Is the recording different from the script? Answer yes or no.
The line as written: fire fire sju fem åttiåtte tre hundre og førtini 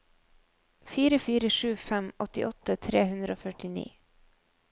no